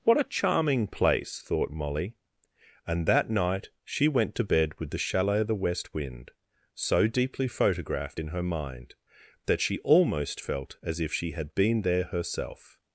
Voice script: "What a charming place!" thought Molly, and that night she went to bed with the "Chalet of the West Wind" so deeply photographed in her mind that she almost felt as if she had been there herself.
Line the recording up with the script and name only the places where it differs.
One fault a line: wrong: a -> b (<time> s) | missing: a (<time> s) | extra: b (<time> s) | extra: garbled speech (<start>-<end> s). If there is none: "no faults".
no faults